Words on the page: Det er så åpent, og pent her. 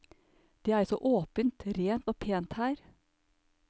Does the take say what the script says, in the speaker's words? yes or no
no